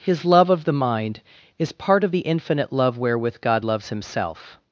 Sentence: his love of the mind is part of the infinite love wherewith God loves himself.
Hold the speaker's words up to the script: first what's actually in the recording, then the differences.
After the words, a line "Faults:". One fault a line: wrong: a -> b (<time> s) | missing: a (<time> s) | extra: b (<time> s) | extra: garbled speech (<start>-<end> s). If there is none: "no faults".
his love of the mind is part of the infinite love wherewith God loves himself.
Faults:
no faults